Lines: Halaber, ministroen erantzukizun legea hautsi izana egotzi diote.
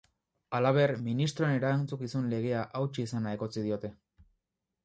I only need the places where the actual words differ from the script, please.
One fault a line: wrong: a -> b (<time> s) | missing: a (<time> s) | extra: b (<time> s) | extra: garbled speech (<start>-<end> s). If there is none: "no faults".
no faults